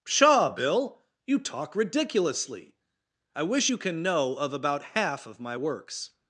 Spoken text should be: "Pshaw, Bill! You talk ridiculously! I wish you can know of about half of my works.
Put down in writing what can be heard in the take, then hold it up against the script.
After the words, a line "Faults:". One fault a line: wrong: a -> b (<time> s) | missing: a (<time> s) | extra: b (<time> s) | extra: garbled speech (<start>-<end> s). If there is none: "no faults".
"Pshaw, Bill! You talk ridiculously! I wish you can know of about half of my works.
Faults:
no faults